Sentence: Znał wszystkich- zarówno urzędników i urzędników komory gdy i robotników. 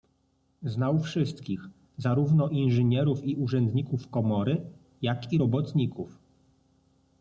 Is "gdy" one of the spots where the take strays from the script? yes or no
yes